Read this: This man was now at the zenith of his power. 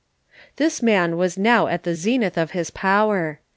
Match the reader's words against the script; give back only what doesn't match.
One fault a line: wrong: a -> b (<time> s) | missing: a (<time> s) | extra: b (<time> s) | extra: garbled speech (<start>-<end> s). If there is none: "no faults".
no faults